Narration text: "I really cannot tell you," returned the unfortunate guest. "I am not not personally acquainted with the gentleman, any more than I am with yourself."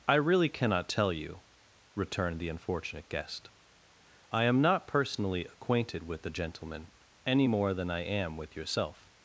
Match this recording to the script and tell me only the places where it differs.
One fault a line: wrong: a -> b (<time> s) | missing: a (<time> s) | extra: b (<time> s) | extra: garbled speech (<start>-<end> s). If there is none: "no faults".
missing: not (4.9 s)